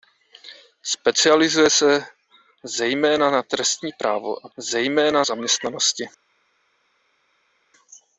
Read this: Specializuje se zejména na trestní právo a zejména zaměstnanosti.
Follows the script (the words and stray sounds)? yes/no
yes